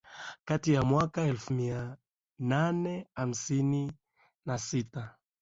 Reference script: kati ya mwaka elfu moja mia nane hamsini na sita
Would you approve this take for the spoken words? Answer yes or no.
no